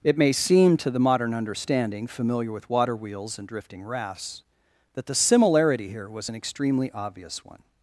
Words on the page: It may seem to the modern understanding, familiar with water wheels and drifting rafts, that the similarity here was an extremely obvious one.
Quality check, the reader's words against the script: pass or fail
pass